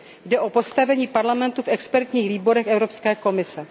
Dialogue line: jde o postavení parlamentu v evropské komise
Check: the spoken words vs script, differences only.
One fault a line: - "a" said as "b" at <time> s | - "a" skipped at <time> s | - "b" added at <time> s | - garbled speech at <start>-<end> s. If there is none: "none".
- "expertních výborech" added at 1.7 s